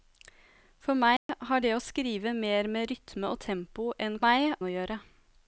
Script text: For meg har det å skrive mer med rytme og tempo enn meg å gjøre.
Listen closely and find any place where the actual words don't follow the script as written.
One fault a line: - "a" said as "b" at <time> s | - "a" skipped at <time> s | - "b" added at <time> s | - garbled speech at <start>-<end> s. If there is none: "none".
none